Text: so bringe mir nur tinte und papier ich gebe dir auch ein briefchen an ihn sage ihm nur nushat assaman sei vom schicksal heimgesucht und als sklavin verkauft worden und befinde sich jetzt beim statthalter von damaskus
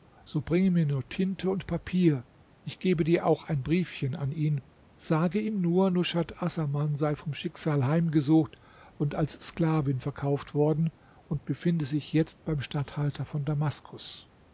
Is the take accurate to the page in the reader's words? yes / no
yes